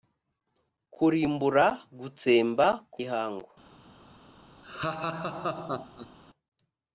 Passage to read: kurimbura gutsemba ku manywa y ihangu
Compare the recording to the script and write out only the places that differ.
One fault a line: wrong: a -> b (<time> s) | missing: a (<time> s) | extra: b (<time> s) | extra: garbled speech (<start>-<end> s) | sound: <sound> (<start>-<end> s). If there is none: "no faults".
missing: manywa (3.0 s)
sound: laugh (4.6-6.2 s)